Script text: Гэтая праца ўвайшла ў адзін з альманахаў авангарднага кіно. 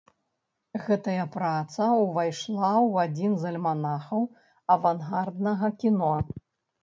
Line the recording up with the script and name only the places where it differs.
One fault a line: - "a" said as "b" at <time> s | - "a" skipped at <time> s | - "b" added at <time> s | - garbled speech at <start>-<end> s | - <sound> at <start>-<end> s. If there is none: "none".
none